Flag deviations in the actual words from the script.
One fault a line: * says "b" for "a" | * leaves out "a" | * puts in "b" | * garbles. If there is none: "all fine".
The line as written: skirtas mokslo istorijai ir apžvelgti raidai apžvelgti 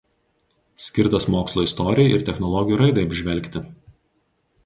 * says "technologijų" for "apžvelgti"